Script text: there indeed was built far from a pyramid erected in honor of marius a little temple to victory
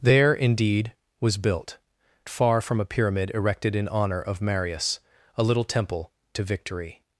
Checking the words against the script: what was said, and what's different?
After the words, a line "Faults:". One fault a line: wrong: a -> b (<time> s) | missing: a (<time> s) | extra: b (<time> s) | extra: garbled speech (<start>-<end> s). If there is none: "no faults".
there indeed was built far from a pyramid erected in honor of marius a little temple to victory
Faults:
no faults